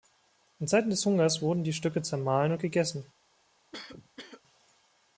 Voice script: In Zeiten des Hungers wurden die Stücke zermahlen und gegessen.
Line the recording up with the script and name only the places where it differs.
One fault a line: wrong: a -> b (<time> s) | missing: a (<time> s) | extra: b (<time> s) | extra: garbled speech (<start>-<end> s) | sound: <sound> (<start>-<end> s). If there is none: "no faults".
sound: cough (3.7-4.4 s)